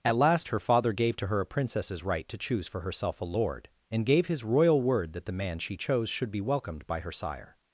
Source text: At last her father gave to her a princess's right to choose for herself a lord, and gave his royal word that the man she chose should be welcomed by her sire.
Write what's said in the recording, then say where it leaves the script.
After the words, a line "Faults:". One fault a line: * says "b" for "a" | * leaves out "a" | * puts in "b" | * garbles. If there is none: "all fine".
At last her father gave to her a princess's right to choose for herself a lord, and gave his royal word that the man she chose should be welcomed by her sire.
Faults:
all fine